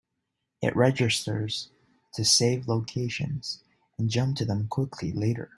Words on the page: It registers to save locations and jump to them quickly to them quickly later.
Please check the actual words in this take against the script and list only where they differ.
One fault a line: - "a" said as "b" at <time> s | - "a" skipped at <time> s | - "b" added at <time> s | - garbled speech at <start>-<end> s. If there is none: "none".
- "to them quickly" skipped at 5.1 s